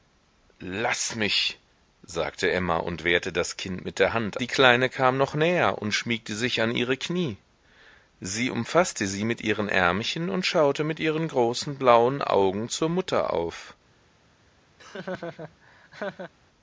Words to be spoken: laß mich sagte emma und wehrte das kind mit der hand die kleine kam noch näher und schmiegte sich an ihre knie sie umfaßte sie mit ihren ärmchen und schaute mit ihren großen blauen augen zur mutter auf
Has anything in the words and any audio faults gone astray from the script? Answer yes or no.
yes